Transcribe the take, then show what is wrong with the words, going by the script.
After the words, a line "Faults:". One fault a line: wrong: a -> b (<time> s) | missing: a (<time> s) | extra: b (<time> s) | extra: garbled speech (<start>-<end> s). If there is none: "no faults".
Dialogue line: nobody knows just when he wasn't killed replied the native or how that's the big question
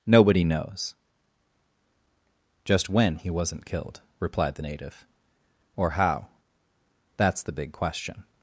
nobody knows just when he wasn't killed replied the native or how that's the big question
Faults:
no faults